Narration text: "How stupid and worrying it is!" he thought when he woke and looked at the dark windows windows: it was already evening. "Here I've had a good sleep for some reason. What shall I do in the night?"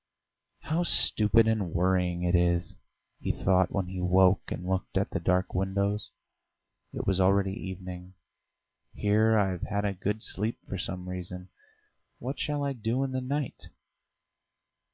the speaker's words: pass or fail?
fail